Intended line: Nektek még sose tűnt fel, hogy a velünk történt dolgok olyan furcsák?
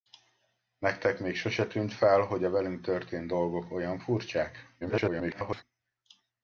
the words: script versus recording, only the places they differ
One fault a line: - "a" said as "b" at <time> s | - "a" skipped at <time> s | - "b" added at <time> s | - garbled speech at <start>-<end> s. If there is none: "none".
- garbled speech at 4.8-5.6 s